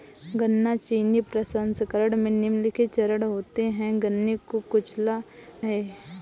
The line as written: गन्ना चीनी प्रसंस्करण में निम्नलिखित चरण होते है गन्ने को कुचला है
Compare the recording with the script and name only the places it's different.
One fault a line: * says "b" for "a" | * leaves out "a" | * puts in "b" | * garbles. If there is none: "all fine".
all fine